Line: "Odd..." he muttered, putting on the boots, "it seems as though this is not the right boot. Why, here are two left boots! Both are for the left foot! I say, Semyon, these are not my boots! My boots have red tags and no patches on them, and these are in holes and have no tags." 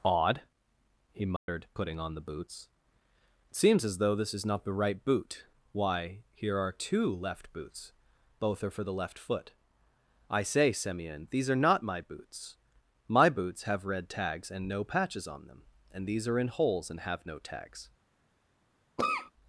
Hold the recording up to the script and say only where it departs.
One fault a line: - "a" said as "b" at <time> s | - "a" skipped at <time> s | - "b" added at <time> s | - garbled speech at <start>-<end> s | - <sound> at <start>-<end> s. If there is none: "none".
- dropout at 1.4-1.5 s
- cough at 19.0-19.3 s